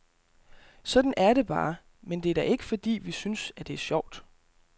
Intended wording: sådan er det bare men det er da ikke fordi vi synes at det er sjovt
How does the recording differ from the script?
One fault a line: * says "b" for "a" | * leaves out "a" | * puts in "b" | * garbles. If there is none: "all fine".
all fine